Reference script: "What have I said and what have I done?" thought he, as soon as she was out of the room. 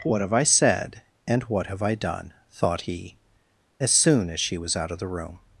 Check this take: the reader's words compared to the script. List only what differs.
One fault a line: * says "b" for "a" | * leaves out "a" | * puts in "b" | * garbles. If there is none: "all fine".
all fine